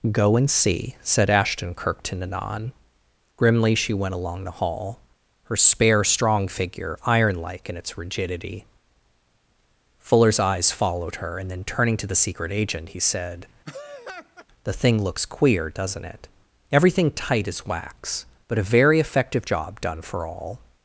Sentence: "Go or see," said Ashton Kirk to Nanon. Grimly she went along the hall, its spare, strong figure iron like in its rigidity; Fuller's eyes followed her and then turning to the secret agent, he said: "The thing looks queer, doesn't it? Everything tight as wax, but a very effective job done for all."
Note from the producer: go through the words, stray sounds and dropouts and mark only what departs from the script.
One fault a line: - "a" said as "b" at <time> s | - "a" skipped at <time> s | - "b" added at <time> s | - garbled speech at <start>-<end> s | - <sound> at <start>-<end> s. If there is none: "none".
- "or" said as "and" at 0.3 s
- "its" said as "her" at 5.4 s
- laugh at 13.6-14.5 s